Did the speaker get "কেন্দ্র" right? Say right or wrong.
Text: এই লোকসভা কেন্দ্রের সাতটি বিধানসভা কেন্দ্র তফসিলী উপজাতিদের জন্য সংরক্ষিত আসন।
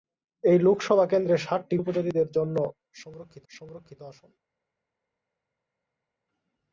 wrong